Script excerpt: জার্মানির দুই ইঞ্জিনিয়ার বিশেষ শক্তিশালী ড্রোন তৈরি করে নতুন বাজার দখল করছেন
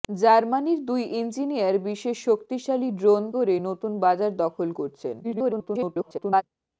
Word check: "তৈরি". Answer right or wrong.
wrong